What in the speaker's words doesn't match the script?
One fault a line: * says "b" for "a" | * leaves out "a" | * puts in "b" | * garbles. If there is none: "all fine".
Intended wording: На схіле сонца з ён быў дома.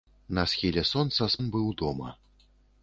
all fine